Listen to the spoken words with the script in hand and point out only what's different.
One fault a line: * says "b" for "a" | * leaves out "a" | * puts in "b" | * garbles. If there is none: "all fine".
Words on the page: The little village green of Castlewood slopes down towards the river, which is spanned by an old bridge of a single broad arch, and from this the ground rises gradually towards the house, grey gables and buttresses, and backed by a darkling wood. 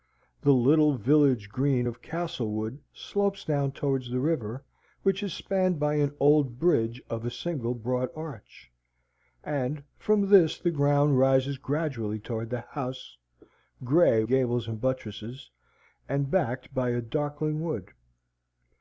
all fine